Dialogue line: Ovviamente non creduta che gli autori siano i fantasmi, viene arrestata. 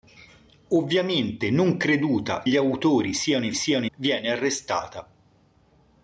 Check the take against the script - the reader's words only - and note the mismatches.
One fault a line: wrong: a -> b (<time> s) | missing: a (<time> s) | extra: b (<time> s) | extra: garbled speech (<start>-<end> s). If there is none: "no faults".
missing: che (2.4 s)
wrong: fantasmi -> siano (3.5 s)